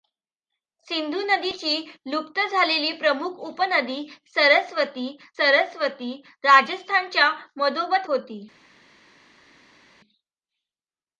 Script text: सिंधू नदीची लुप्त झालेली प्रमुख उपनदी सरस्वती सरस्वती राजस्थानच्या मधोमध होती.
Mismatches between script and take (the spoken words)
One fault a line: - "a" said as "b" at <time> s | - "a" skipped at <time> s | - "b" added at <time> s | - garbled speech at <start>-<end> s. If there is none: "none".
none